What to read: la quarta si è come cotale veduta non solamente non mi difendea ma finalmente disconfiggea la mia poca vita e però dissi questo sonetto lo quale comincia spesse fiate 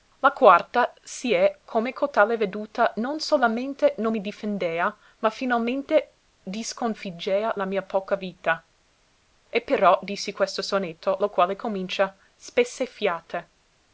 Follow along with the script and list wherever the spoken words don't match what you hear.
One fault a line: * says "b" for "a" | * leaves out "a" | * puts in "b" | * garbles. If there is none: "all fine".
all fine